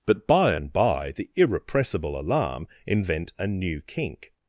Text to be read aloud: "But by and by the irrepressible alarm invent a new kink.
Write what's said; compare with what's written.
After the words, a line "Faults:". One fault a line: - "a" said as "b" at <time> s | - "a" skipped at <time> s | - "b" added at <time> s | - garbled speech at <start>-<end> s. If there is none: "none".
"But by and by the irrepressible alarm invent a new kink.
Faults:
none